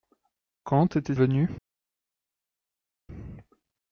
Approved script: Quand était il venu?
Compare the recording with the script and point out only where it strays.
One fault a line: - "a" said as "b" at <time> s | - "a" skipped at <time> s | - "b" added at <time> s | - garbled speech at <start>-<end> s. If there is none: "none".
- "il" skipped at 1.1 s